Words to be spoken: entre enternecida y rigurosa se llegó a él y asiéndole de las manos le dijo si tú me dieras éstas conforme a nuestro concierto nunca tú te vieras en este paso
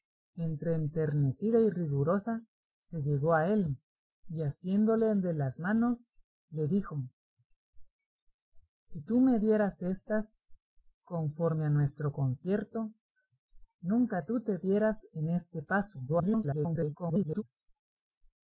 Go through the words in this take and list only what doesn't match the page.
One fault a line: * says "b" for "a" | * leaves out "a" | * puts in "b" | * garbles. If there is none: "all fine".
* garbles